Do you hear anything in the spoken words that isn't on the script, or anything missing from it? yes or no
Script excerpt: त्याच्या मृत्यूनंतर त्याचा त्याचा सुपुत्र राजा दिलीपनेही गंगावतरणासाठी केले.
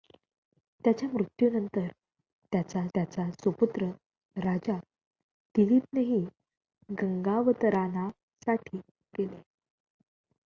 no